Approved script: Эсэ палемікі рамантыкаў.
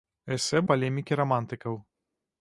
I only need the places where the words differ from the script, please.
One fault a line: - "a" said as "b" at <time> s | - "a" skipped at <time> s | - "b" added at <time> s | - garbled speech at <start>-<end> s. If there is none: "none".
none